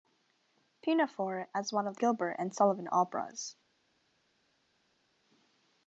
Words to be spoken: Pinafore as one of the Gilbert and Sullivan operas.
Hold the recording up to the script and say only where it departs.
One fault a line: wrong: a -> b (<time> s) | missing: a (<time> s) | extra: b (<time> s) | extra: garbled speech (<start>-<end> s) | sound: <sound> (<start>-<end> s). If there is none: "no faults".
no faults